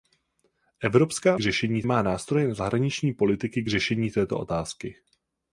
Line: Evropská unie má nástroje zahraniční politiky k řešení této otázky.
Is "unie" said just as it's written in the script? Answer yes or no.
no